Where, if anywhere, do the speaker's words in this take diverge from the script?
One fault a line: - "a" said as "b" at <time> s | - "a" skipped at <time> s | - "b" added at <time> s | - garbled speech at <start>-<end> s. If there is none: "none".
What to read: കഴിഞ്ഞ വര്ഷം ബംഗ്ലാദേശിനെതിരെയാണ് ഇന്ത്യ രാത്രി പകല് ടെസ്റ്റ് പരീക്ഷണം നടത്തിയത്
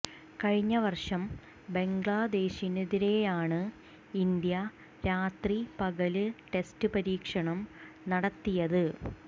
none